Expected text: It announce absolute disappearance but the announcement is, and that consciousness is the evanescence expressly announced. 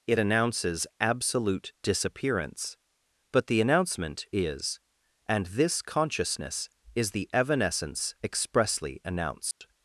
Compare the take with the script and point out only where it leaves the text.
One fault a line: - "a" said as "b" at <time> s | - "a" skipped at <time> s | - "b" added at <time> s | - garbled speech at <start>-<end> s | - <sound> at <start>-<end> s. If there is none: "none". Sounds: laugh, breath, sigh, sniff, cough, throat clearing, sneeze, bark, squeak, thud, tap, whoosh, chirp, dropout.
- "announce" said as "announces" at 0.2 s
- "that" said as "this" at 5.5 s
- dropout at 9.5-9.6 s